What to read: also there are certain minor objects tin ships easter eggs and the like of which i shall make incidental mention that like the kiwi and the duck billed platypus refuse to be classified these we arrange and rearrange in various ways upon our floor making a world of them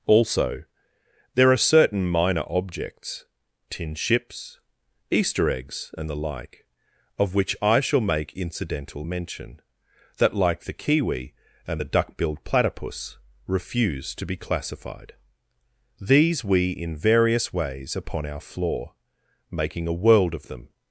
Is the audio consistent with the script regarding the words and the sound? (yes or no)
no